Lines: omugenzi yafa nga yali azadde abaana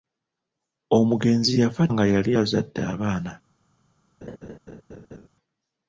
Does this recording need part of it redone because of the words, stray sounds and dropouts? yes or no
yes